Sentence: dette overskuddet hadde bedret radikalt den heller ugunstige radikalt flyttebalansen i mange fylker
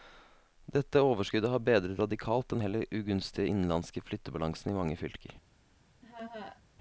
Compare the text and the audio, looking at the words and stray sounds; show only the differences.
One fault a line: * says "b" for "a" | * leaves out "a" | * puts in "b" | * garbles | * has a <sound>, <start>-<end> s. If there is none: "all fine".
* says "har" for "hadde"
* says "innenlandske" for "radikalt"
* has a laugh, 6.0-6.6 s